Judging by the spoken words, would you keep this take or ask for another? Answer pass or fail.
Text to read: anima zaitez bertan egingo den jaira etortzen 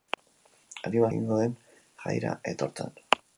fail